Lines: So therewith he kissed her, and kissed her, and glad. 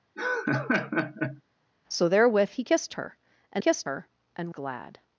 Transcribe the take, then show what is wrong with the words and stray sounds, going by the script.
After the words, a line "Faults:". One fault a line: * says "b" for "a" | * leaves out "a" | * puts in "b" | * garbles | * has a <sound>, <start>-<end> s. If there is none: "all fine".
So therewith he kissed her, and kissed her, and glad.
Faults:
* has a laugh, 0.2-1.4 s